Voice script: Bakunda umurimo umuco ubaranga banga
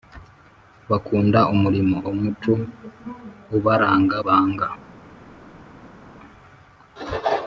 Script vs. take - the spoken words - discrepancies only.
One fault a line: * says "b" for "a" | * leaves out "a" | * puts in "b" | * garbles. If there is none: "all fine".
all fine